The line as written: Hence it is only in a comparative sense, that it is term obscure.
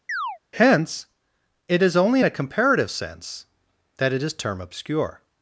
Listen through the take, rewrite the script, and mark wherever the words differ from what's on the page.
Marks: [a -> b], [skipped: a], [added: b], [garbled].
Hence it is only in a comparative sense, that it is term obscure.